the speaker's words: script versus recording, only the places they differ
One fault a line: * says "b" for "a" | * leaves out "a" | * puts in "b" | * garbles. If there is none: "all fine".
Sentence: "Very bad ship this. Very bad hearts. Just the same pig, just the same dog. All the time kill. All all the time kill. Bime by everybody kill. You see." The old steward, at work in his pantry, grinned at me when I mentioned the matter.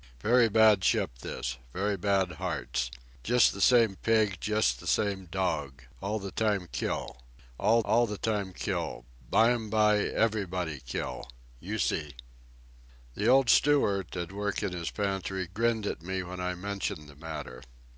all fine